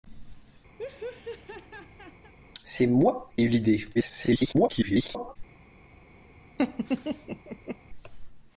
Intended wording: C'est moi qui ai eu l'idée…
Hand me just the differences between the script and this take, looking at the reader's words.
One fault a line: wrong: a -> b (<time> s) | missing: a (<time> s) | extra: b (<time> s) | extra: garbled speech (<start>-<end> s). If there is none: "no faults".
missing: qui (3.3 s)
extra: garbled speech (3.9-5.4 s)